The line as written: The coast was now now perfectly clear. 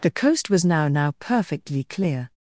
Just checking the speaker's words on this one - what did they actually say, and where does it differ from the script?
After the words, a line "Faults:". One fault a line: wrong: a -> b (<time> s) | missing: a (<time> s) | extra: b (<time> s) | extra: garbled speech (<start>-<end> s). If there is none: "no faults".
The coast was now now perfectly clear.
Faults:
no faults